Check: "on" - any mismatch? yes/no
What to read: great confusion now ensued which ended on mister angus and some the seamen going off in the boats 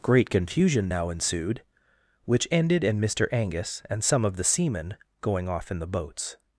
yes